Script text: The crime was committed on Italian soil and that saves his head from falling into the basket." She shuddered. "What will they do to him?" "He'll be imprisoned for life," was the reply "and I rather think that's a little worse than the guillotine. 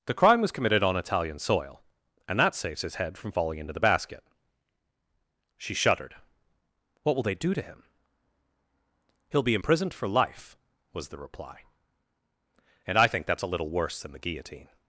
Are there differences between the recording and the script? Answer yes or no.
yes